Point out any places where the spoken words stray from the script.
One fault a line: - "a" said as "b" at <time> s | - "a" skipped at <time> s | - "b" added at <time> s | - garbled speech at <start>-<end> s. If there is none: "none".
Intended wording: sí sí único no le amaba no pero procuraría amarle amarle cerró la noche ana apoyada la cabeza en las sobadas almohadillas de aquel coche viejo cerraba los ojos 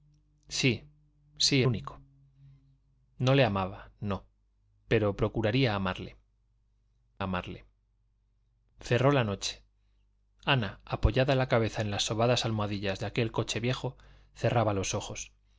none